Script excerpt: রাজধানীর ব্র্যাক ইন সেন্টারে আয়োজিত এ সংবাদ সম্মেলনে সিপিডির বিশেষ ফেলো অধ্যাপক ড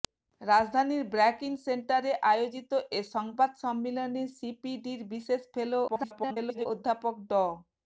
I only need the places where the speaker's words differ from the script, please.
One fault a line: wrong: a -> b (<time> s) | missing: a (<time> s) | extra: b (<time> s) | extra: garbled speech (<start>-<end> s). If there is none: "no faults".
extra: garbled speech (5.9-6.7 s)